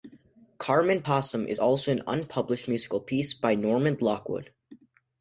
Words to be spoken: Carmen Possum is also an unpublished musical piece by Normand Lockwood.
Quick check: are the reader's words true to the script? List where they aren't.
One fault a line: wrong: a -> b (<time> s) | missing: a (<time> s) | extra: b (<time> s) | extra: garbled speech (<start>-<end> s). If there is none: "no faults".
no faults